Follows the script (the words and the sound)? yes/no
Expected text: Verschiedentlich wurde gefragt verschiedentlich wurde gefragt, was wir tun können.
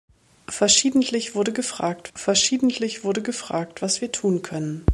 yes